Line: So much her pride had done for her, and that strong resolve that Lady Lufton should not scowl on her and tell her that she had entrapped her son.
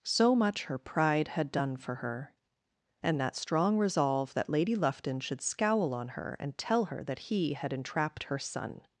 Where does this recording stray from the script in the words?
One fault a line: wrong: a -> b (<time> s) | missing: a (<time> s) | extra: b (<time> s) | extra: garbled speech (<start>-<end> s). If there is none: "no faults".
missing: not (5.4 s)
wrong: she -> he (7.2 s)